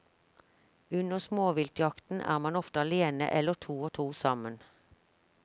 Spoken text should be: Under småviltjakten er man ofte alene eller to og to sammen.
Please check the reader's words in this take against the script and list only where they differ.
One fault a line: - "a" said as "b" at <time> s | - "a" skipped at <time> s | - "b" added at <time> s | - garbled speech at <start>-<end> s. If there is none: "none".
none